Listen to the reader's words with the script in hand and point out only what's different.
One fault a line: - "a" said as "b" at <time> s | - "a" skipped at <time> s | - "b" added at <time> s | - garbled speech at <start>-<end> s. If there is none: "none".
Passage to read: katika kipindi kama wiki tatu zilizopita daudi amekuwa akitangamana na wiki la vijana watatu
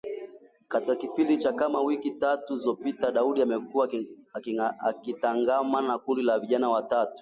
- "cha" added at 1.4 s
- "wiki" said as "kundi" at 6.0 s